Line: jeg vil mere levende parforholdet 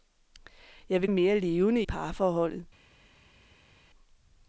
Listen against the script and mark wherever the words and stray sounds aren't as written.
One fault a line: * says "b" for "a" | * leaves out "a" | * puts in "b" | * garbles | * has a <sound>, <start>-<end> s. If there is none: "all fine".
all fine